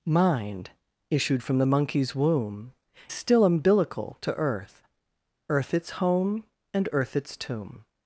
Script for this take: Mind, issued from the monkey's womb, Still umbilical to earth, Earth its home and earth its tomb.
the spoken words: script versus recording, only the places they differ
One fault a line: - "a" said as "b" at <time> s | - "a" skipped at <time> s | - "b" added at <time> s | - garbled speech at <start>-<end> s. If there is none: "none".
none